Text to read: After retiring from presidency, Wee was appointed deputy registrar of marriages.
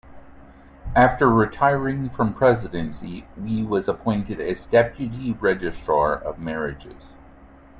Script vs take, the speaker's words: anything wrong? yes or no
yes